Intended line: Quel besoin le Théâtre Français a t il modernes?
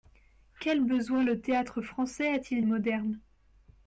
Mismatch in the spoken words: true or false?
false